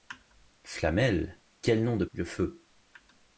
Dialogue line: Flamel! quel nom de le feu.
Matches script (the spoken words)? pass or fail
pass